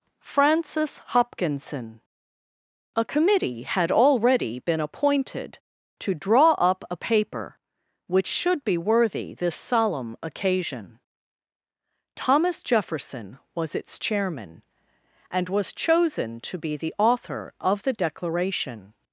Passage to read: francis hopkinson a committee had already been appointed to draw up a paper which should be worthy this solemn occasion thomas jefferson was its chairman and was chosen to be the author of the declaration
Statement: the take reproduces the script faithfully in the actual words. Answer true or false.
true